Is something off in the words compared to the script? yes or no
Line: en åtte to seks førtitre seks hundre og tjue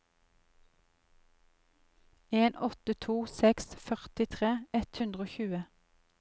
yes